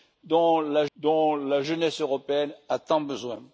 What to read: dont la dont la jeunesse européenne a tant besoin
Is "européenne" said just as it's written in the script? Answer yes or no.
yes